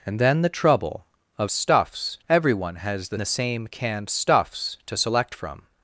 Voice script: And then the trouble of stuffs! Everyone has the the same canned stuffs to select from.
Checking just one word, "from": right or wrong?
right